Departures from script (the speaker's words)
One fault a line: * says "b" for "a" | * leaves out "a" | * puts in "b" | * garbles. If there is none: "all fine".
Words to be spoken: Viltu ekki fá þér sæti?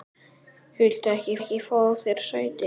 * puts in "ekki"